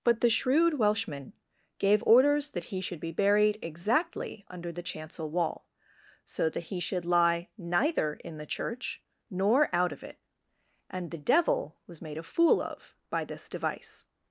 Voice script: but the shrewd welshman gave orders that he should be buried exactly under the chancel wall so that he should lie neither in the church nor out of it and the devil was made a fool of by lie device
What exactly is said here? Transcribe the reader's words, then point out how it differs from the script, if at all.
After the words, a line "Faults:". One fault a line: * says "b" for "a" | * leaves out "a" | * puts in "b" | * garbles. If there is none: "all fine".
but the shrewd welshman gave orders that he should be buried exactly under the chancel wall so that he should lie neither in the church nor out of it and the devil was made a fool of by this device
Faults:
* says "this" for "lie"